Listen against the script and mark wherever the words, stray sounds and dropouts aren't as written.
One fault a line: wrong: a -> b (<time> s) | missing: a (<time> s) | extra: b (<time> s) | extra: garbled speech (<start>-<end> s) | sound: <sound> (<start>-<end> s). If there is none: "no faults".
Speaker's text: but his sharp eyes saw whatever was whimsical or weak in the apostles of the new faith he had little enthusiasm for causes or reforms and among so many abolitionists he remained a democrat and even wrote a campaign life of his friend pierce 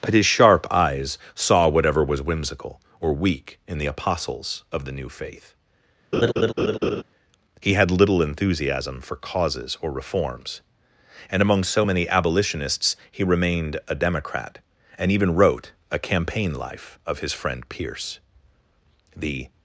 sound: laugh (6.1-7.0 s)
extra: the (19.1 s)